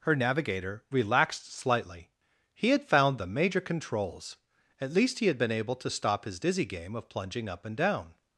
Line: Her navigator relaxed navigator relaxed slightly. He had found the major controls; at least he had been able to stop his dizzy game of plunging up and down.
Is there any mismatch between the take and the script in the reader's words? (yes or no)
yes